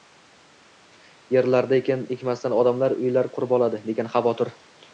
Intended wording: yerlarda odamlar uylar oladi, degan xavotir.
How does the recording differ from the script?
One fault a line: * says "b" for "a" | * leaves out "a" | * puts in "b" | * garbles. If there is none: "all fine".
* puts in "ekin ekmasdan"
* puts in "qurib"